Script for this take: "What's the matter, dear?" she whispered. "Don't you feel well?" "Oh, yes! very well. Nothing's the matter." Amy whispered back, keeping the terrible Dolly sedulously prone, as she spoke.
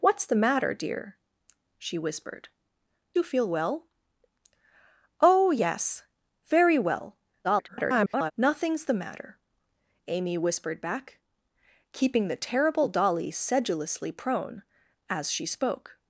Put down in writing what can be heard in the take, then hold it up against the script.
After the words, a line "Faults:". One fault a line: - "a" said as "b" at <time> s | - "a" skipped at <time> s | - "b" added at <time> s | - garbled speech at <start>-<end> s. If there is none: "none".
"What's the matter, dear?" she whispered. "You feel well?" "Oh, yes! very well. [garbled] Nothing's the matter." Amy whispered back, keeping the terrible Dolly sedulously prone, as she spoke.
Faults:
- "Don't" skipped at 2.5 s
- garbled speech at 7.4-8.3 s